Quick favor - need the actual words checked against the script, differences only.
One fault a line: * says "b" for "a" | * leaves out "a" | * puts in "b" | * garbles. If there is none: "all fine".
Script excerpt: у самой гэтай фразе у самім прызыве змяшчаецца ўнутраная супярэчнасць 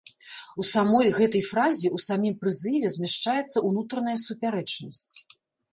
all fine